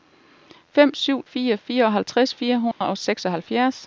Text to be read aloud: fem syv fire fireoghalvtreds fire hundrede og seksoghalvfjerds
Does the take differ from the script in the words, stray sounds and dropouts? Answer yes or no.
yes